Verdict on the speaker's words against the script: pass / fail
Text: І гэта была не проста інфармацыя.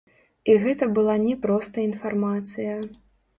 pass